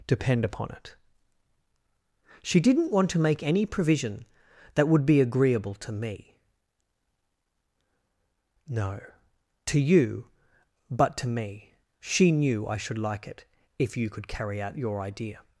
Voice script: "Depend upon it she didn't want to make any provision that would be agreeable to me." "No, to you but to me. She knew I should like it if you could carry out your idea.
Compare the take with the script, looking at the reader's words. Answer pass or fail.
pass